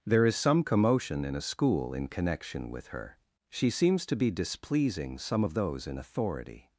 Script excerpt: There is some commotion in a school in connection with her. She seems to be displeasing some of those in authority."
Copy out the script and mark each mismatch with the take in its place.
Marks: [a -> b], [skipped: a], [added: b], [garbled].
There is some commotion in a school in connection with her. She seems to be displeasing some of those in authority."